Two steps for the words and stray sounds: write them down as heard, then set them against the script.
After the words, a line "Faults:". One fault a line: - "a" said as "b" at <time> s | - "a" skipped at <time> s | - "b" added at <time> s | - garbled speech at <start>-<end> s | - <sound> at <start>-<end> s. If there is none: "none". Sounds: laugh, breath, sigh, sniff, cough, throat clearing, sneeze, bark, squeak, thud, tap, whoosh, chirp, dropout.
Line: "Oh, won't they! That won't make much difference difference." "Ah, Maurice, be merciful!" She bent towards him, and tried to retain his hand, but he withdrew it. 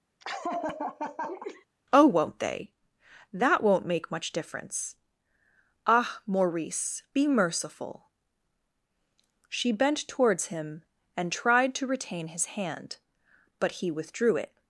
"Oh, won't they! That won't make much difference." "Ah, Maurice, be merciful!" She bent towards him, and tried to retain his hand, but he withdrew it.
Faults:
- laugh at 0.2-1.7 s
- "difference" skipped at 5.0 s